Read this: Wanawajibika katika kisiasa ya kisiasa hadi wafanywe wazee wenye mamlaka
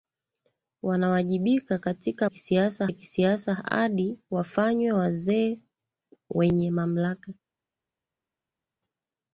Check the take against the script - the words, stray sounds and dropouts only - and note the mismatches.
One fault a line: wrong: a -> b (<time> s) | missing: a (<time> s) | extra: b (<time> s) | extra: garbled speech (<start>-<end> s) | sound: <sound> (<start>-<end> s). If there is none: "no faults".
no faults